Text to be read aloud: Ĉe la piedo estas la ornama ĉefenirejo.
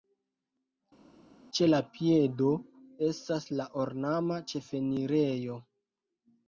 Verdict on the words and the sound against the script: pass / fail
pass